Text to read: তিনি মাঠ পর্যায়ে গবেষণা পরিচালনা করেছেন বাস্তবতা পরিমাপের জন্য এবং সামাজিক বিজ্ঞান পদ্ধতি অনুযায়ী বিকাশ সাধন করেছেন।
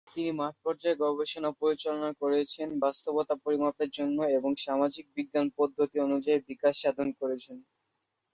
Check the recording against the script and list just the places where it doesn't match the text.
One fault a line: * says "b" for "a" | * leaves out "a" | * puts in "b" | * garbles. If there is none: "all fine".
all fine